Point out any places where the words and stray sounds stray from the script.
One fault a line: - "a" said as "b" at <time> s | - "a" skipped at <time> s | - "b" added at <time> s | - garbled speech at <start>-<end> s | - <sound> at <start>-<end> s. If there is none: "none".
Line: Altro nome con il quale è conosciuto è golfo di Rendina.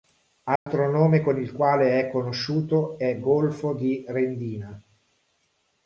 - dropout at 0.6-0.7 s